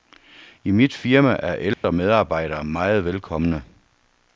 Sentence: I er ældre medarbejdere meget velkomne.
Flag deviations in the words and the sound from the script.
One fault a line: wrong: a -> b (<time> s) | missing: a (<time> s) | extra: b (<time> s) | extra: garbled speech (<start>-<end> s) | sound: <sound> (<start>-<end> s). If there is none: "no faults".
extra: mit firma (0.7 s)
sound: dropout (1.7-1.8 s)